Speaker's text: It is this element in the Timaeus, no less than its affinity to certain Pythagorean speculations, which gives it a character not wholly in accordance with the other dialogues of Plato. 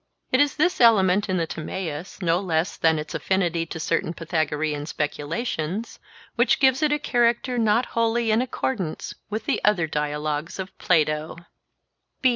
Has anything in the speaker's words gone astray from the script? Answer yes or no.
no